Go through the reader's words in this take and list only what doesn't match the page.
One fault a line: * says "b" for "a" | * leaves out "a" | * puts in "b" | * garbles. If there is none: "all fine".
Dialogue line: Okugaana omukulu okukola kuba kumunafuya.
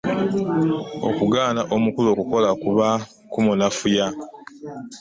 all fine